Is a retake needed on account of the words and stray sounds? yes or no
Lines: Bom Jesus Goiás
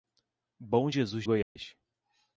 yes